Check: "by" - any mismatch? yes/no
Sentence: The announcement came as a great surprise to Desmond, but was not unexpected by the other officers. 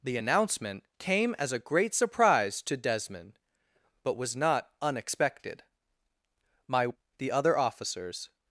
yes